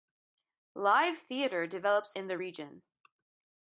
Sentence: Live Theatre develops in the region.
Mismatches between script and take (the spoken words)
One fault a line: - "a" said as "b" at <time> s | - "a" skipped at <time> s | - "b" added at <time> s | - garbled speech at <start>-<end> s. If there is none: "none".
none